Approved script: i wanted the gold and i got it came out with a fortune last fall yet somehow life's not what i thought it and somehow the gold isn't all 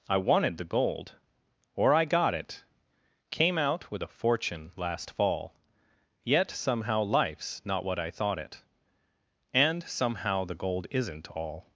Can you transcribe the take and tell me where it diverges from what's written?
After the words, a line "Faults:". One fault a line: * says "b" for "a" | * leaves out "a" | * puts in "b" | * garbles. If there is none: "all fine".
i wanted the gold or i got it came out with a fortune last fall yet somehow life's not what i thought it and somehow the gold isn't all
Faults:
* says "or" for "and"